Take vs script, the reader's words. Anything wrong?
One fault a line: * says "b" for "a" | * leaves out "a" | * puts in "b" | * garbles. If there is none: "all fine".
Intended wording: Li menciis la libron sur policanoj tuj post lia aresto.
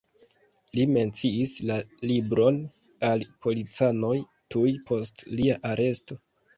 * says "al" for "sur"